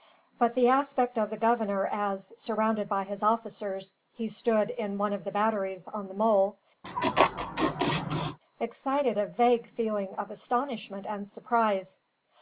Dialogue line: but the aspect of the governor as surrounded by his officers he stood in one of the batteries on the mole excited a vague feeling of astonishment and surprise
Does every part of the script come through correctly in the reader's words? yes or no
yes